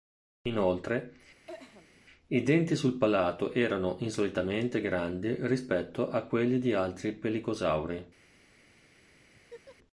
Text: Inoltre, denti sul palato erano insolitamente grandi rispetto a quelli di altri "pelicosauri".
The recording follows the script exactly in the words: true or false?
false